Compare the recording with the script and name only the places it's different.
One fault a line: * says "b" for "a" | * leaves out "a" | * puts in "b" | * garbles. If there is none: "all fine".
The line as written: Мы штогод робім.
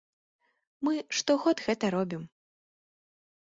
* puts in "гэта"